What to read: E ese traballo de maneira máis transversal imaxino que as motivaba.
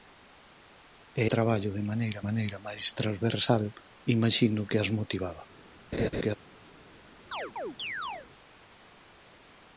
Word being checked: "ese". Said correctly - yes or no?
no